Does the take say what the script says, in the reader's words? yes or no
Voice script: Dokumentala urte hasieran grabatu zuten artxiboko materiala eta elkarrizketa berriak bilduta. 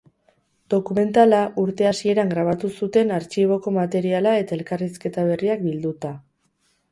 yes